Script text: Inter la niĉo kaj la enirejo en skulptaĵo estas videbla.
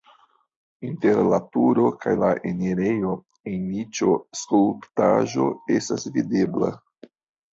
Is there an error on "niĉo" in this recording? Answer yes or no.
yes